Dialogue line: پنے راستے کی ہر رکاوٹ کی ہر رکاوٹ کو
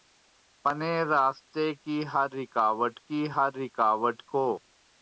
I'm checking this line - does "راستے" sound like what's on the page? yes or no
yes